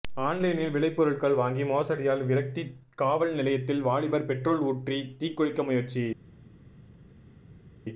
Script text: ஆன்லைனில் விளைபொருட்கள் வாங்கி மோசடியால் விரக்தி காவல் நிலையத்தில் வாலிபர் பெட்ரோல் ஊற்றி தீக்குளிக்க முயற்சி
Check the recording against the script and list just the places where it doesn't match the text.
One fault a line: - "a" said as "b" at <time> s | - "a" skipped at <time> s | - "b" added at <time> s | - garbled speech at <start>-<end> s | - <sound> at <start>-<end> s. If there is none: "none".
none